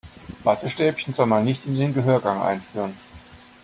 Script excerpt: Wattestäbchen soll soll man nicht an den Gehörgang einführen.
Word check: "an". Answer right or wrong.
wrong